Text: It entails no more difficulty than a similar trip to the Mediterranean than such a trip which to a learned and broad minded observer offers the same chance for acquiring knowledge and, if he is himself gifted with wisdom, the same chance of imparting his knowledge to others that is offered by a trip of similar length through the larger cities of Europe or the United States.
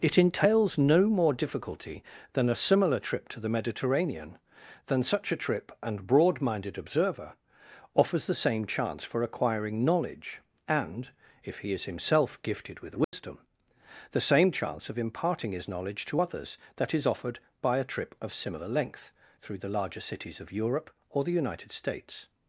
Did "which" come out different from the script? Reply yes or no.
yes